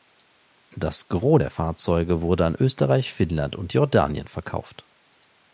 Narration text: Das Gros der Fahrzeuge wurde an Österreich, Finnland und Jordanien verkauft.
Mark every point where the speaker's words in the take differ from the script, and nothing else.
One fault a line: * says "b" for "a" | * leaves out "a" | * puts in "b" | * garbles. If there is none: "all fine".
all fine